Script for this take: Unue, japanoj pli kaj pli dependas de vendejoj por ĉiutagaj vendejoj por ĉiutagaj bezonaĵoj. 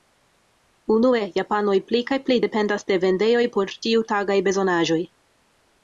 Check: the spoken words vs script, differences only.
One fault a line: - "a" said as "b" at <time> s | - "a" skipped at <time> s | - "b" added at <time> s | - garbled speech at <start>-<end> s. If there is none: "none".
- "vendejoj por ĉiutagaj" skipped at 4.4 s